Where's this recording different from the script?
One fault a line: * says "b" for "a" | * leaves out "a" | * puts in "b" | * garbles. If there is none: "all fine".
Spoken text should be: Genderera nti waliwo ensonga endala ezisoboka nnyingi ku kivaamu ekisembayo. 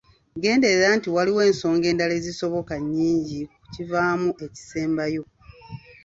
all fine